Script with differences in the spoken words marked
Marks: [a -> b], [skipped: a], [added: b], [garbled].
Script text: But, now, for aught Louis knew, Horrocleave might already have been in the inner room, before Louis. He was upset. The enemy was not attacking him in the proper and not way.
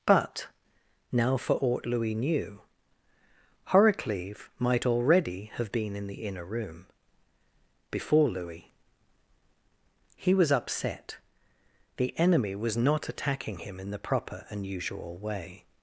But, now, for aught Louis knew, Horrocleave might already have been in the inner room, before Louis. He was upset. The enemy was not attacking him in the proper and [not -> usual] way.